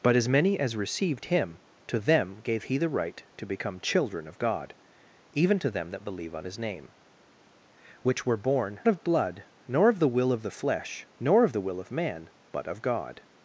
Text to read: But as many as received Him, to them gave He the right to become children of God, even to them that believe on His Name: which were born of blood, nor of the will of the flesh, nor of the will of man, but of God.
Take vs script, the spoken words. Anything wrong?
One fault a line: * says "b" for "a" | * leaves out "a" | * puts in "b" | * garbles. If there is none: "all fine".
all fine